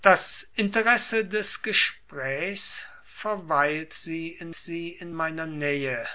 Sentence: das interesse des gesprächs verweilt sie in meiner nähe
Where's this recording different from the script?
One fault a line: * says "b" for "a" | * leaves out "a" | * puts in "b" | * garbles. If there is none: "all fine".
* puts in "sie in"